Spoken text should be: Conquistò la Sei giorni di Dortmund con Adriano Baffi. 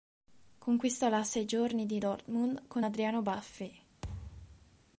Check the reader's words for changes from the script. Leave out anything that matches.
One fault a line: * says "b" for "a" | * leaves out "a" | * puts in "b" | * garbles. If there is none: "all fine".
all fine